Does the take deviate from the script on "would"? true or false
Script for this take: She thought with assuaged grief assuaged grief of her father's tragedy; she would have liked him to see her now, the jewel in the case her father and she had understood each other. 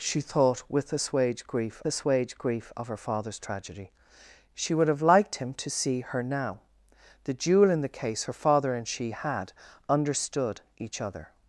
false